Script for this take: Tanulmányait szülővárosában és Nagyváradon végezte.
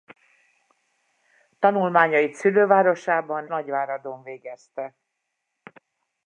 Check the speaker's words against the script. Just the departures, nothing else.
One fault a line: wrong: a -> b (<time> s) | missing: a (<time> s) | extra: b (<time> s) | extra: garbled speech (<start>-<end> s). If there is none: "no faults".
missing: és (3.5 s)